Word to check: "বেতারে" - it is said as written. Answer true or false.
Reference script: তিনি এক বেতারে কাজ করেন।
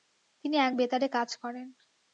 true